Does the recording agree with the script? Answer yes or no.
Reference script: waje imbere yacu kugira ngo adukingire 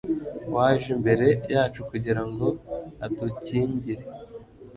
yes